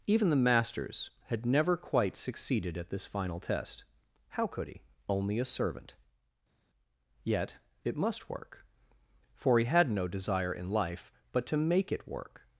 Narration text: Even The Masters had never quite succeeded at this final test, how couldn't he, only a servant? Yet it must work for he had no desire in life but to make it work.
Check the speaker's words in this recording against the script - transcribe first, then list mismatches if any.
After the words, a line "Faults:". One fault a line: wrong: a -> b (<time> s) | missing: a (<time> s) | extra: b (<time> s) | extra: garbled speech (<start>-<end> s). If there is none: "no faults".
Even The Masters had never quite succeeded at this final test, how could he, only a servant? Yet it must work for he had no desire in life but to make it work.
Faults:
wrong: couldn't -> could (4.5 s)